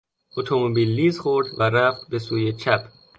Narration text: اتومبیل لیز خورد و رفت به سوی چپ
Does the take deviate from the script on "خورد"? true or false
false